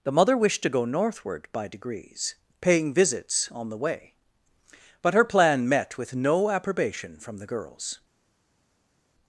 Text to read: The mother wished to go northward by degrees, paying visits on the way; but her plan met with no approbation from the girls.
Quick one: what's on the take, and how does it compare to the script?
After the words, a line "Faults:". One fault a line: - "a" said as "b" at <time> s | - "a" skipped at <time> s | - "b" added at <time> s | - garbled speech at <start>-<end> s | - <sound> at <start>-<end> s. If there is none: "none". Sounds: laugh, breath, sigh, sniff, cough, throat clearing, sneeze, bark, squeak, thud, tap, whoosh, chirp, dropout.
The mother wished to go northward by degrees, paying visits on the way; but her plan met with no approbation from the girls.
Faults:
none